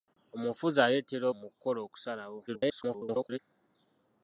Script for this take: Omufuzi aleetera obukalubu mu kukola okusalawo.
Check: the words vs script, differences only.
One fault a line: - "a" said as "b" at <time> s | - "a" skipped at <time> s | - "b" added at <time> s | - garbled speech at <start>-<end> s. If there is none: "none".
- "obukalubu" skipped at 1.2 s
- garbled speech at 2.5-3.4 s